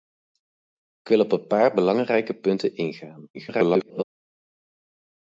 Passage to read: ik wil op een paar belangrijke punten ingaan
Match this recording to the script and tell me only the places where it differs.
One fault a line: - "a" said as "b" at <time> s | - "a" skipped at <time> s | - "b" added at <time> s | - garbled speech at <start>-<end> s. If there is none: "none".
- garbled speech at 3.3-4.0 s